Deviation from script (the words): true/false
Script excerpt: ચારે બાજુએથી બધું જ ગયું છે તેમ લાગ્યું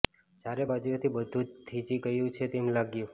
true